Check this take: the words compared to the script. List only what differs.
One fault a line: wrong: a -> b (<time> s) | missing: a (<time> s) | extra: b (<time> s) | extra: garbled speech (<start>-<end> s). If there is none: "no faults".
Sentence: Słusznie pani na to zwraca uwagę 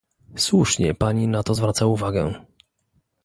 no faults